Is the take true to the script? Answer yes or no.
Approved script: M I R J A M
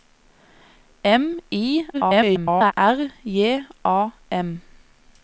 no